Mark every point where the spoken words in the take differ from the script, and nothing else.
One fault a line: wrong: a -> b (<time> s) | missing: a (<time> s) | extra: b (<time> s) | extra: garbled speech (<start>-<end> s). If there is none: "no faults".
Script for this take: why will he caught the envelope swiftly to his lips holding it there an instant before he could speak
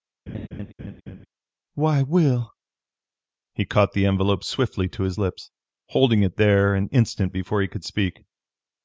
no faults